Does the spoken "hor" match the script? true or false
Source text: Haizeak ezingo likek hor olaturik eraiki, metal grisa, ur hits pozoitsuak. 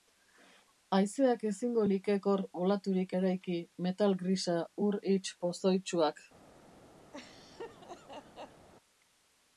true